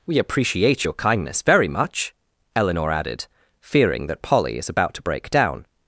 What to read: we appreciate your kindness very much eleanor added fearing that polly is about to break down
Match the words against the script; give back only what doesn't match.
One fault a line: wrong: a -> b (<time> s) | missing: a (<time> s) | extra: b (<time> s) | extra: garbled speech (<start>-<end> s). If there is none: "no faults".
no faults